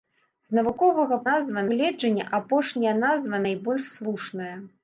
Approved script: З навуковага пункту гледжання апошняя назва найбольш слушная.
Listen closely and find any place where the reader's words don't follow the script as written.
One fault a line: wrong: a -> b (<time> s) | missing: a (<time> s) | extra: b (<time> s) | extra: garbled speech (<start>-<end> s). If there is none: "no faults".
wrong: пункту -> назва (1.3 s)